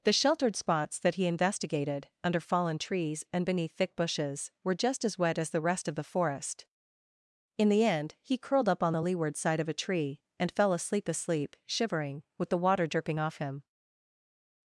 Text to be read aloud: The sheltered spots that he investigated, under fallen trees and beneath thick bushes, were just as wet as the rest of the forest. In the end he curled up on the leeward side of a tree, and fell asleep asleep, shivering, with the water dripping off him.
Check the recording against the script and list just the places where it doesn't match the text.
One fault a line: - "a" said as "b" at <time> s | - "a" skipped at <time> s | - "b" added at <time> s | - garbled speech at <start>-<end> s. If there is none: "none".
none